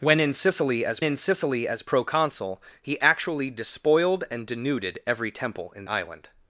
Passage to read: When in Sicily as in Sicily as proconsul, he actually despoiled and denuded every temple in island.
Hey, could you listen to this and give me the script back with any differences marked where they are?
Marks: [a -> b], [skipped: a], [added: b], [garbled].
When in Sicily as in Sicily as proconsul, he actually despoiled and denuded every temple in island.